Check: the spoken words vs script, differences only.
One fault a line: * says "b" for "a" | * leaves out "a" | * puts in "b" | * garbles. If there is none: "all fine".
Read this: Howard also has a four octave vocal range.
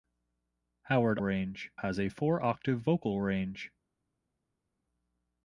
* says "range" for "also"